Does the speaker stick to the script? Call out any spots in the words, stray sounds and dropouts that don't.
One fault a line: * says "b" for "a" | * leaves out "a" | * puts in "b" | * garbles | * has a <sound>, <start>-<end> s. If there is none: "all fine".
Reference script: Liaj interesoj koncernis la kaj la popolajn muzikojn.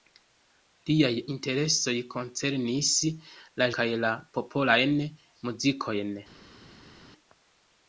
all fine